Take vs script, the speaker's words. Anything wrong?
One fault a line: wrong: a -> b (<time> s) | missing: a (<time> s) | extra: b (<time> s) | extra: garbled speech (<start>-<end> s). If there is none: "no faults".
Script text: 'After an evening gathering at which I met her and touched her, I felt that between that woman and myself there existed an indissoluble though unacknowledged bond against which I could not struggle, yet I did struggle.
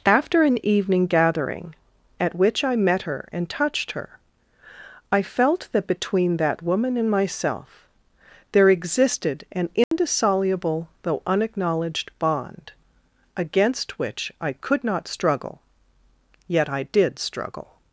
no faults